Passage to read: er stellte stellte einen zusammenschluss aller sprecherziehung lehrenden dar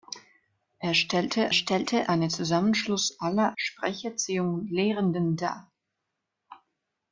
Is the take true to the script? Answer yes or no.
yes